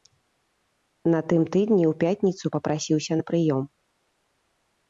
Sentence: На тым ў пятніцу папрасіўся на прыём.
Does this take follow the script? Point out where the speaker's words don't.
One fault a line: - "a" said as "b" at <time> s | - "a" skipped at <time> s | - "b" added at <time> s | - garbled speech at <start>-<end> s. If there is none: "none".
- "тыдні" added at 1.6 s